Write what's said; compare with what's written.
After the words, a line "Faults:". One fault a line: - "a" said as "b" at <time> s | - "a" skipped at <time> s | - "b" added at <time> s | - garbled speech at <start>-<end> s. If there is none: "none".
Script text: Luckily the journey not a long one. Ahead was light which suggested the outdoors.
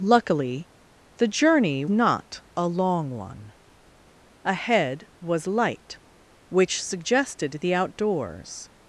Luckily the journey not a long one. Ahead was light which suggested the outdoors.
Faults:
none